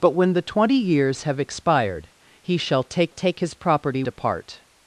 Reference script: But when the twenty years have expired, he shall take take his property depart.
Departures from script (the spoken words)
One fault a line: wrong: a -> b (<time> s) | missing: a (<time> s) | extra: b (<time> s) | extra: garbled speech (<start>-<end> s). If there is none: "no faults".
no faults